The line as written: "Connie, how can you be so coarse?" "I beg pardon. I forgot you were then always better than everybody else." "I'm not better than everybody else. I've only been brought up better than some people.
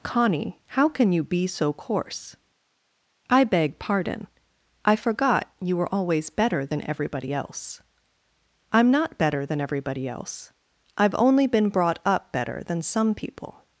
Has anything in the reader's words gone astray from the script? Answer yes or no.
yes